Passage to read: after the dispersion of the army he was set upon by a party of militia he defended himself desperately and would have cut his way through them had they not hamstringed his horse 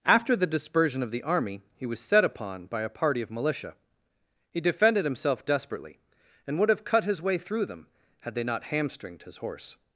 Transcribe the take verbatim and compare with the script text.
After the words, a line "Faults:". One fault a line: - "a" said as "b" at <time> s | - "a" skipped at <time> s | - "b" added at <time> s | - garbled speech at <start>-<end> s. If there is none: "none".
after the dispersion of the army he was set upon by a party of militia he defended himself desperately and would have cut his way through them had they not hamstringed his horse
Faults:
none